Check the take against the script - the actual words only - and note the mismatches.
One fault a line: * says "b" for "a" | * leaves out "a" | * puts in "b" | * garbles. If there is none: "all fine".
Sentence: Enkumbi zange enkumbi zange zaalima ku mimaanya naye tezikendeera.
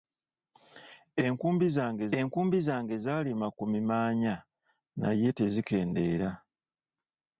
all fine